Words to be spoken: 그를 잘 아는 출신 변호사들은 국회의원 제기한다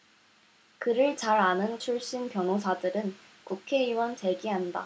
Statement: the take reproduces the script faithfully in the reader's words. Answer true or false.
true